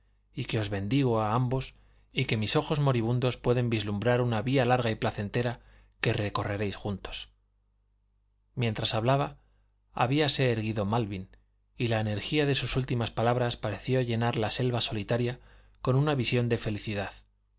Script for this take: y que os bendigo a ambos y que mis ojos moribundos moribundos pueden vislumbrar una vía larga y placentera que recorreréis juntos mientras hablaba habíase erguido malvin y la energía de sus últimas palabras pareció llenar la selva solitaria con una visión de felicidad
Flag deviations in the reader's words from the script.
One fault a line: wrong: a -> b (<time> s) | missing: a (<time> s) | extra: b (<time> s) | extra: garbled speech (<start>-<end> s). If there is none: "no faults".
missing: moribundos (3.4 s)